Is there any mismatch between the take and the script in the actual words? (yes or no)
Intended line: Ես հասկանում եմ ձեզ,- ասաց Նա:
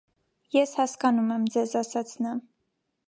no